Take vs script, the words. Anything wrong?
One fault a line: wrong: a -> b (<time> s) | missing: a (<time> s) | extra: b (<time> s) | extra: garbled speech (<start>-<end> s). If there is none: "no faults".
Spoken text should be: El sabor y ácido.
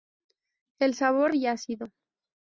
no faults